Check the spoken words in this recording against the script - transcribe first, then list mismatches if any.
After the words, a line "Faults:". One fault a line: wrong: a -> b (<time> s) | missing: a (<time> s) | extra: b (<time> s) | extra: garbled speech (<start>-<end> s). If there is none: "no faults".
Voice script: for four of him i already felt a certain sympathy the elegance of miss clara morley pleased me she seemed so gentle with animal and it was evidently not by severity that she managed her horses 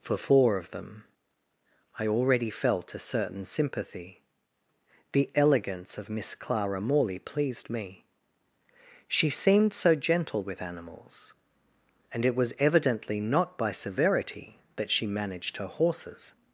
for four of them i already felt a certain sympathy the elegance of miss clara morley pleased me she seemed so gentle with animals and it was evidently not by severity that she managed her horses
Faults:
wrong: him -> them (0.7 s)
wrong: animal -> animals (10.6 s)